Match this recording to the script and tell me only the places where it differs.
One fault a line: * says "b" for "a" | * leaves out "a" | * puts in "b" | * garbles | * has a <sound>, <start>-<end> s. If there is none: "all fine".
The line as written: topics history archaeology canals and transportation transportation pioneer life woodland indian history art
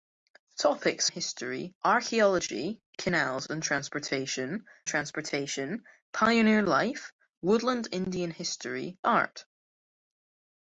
all fine